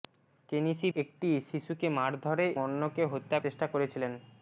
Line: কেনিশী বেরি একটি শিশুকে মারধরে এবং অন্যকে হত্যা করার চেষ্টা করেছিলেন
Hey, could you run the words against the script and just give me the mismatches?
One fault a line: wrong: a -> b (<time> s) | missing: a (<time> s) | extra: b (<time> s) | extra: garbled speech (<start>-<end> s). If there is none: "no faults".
missing: বেরি (0.9 s)
missing: এবং (2.5 s)
missing: করার (3.4 s)